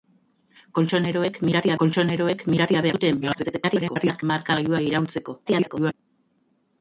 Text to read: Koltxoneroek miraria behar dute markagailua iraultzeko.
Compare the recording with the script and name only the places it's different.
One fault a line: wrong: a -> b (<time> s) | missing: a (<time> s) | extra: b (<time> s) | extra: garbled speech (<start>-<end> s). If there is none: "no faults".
extra: koltxoneroek miraria (1.8 s)
extra: garbled speech (3.2-4.2 s)
extra: garbled speech (5.5-5.9 s)